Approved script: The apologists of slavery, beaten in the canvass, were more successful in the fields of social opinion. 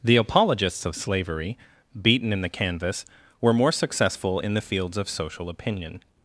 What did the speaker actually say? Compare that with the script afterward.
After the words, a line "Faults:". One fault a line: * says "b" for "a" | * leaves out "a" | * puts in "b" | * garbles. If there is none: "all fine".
The apologists of slavery, beaten in the canvass, were more successful in the fields of social opinion.
Faults:
all fine